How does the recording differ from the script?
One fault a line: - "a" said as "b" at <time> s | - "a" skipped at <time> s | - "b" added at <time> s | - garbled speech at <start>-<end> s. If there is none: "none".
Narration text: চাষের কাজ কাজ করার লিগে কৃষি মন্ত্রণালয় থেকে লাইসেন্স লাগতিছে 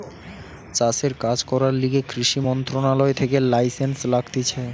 - "কাজ" skipped at 1.4 s